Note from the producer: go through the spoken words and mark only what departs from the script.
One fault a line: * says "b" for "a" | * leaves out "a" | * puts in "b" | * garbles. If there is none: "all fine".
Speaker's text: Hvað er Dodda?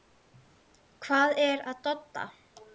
* puts in "að"